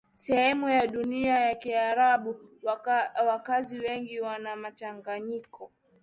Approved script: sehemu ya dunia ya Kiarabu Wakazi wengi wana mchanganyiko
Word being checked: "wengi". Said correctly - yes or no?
yes